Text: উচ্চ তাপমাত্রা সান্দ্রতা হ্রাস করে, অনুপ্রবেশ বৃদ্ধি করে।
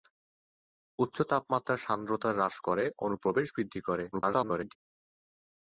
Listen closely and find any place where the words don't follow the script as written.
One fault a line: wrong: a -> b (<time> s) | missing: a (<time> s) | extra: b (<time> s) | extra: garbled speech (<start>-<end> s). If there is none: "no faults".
extra: garbled speech (4.1-4.8 s)